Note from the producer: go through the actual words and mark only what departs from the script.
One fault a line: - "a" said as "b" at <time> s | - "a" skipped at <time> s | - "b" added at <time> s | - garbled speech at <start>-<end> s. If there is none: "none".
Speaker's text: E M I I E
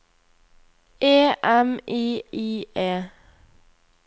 none